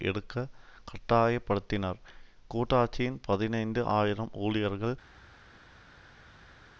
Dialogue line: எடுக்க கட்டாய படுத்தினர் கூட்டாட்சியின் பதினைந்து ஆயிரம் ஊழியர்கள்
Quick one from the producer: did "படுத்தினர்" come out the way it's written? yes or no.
yes